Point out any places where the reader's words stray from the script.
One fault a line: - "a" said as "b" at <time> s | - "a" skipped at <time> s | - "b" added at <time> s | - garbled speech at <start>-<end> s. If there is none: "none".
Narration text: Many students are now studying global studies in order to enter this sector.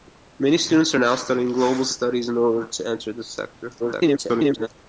- garbled speech at 3.8-4.7 s